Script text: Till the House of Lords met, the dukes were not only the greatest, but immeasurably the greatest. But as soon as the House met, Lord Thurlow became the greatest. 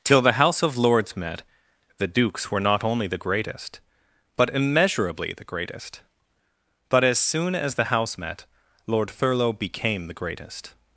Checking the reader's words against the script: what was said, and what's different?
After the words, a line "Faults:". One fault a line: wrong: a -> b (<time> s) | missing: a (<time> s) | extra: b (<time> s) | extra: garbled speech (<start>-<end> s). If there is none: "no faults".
Till the House of Lords met, the dukes were not only the greatest, but immeasurably the greatest. But as soon as the House met, Lord Thurlow became the greatest.
Faults:
no faults